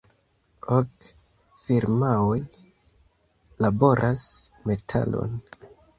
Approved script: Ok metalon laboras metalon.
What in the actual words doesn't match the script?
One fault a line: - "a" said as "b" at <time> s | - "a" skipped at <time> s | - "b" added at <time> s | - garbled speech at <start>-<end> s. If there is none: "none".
- "metalon" said as "firmaoj" at 1.6 s